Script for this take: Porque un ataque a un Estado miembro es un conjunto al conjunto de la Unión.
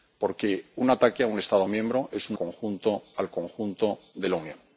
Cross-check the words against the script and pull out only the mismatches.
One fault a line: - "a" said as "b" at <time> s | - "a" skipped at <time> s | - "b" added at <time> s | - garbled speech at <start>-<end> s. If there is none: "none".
none